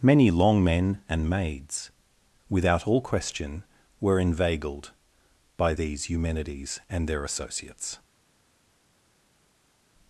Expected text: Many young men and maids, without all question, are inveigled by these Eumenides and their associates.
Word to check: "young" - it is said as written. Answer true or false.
false